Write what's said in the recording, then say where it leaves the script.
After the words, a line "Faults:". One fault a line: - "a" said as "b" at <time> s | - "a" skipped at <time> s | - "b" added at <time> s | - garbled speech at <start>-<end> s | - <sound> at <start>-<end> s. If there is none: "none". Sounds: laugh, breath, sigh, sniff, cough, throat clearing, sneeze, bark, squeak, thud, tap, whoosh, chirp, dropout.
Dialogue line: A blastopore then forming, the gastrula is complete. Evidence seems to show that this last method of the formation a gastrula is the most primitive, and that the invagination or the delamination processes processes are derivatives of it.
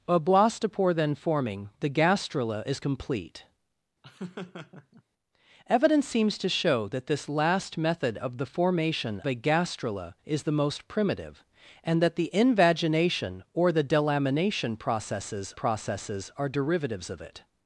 A blastopore then forming, the gastrula is complete. Evidence seems to show that this last method of the formation a gastrula is the most primitive, and that the invagination or the delamination processes processes are derivatives of it.
Faults:
- laugh at 4.0-5.0 s